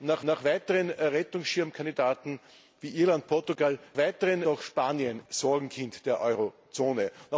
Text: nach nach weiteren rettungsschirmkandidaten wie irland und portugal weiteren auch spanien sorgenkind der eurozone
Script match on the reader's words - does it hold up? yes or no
yes